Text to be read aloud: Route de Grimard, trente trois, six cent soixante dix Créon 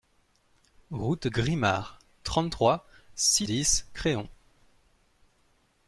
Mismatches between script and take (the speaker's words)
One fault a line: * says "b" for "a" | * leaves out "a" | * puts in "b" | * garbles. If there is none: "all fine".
* leaves out "de"
* leaves out "cent soixante"